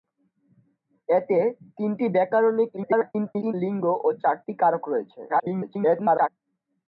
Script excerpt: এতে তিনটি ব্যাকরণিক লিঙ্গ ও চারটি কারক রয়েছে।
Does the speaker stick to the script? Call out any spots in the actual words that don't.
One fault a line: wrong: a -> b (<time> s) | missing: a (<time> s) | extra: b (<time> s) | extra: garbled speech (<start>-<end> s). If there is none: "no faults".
extra: garbled speech (2.8-3.5 s)
extra: garbled speech (5.3-6.3 s)